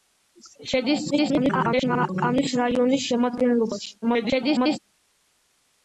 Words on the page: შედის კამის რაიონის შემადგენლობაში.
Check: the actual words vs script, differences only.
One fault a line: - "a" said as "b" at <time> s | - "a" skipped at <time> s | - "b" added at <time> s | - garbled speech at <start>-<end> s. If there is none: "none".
- garbled speech at 1.1-2.1 s
- garbled speech at 4.0-4.8 s